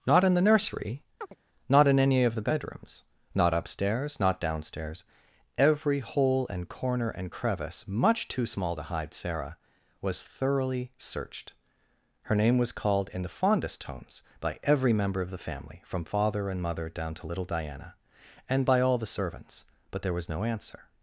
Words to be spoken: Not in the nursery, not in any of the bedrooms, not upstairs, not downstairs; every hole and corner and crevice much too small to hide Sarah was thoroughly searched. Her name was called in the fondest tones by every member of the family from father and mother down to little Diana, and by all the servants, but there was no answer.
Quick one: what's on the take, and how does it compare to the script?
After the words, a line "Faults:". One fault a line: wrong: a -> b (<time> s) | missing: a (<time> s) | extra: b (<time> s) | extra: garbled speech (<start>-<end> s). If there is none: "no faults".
Not in the nursery, not in any of the bedrooms, not upstairs, not downstairs; every hole and corner and crevice much too small to hide Sarah was thoroughly searched. Her name was called in the fondest tones by every member of the family from father and mother down to little Diana, and by all the servants, but there was no answer.
Faults:
no faults